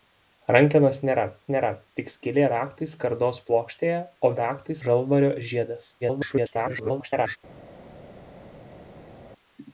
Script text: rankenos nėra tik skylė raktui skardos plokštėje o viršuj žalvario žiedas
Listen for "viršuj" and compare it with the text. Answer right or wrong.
wrong